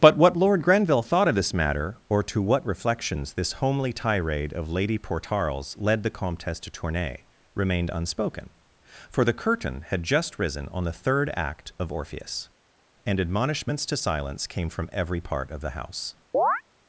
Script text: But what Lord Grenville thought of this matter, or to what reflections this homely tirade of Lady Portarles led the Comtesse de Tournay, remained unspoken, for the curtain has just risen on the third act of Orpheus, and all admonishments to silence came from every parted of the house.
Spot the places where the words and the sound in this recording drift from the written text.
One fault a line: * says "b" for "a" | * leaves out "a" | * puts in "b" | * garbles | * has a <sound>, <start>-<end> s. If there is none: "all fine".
* says "had" for "has"
* leaves out "all"
* says "part" for "parted"
* has a chirp, 16.3-16.6 s